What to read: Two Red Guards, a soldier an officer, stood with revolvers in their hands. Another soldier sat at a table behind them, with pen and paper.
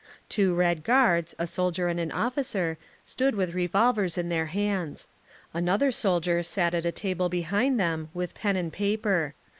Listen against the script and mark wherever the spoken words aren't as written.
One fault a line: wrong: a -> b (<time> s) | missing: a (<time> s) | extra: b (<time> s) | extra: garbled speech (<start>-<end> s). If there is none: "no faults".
extra: and (1.9 s)